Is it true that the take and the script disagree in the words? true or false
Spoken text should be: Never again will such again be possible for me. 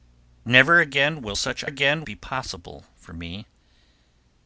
false